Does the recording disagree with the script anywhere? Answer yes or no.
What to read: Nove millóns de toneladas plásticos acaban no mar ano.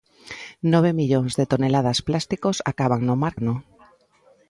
no